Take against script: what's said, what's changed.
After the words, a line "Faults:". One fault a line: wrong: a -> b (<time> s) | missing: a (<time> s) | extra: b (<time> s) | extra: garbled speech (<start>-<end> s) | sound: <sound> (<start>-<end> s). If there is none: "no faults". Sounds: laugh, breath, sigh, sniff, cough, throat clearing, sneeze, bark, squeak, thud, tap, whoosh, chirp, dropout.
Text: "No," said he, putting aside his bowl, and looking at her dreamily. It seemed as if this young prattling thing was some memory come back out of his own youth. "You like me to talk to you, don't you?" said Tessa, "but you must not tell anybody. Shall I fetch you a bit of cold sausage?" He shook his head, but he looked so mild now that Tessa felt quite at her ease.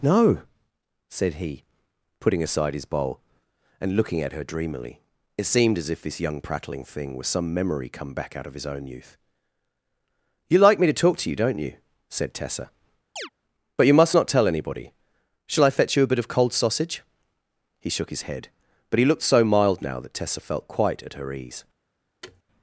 "No," said he, putting aside his bowl, and looking at her dreamily. It seemed as if this young prattling thing was some memory come back out of his own youth. "You like me to talk to you, don't you?" said Tessa, "but you must not tell anybody. Shall I fetch you a bit of cold sausage?" He shook his head, but he looked so mild now that Tessa felt quite at her ease.
Faults:
sound: chirp (13.2-13.3 s)
sound: thud (22.2-22.4 s)